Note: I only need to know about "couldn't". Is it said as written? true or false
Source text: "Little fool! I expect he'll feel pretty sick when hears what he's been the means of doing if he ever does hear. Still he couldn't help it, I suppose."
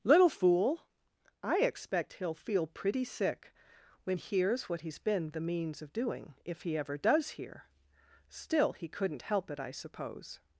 true